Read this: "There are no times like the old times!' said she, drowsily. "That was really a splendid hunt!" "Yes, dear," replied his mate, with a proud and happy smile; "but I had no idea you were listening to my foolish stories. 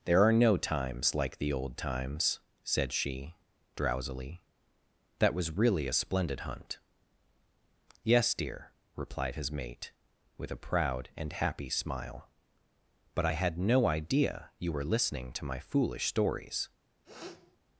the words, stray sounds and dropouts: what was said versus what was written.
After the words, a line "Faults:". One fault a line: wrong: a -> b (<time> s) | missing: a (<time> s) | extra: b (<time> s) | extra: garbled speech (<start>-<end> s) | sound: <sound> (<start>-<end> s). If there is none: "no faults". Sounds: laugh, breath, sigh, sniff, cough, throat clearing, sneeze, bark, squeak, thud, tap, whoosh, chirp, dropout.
"There are no times like the old times!' said she, drowsily. "That was really a splendid hunt!" "Yes, dear," replied his mate, with a proud and happy smile; "but I had no idea you were listening to my foolish stories.
Faults:
sound: sniff (17.0-17.6 s)